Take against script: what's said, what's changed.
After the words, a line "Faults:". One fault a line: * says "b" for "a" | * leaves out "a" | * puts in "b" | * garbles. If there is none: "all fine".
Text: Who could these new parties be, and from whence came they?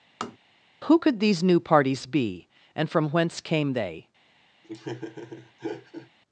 Who could these new parties be, and from whence came they?
Faults:
all fine